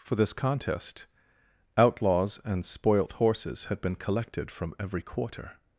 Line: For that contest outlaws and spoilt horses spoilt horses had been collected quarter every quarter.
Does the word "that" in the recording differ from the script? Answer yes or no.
yes